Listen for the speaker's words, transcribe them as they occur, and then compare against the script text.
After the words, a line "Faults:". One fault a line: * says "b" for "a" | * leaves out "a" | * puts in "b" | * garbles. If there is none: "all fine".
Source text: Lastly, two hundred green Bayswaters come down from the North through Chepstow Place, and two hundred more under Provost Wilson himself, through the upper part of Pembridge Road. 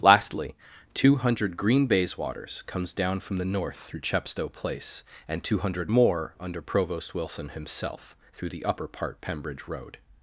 Lastly, two hundred green Bayswaters comes down from the North through Chepstow Place, and two hundred more under Provost Wilson himself, through the upper part Pembridge Road.
Faults:
* says "comes" for "come"
* leaves out "of"